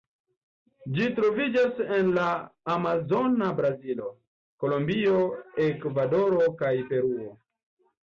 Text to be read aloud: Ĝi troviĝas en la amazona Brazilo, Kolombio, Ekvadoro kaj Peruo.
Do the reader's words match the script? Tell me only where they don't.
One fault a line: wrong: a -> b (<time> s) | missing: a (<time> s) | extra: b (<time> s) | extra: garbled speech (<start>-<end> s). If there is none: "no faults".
no faults